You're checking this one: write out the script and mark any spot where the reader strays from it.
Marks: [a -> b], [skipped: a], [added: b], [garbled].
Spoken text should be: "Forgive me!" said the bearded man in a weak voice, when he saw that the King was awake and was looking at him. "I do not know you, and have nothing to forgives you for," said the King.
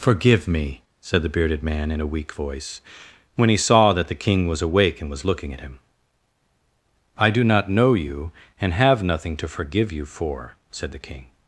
"Forgive me!" said the bearded man in a weak voice, when he saw that the King was awake and was looking at him. "I do not know you, and have nothing to [forgives -> forgive] you for," said the King.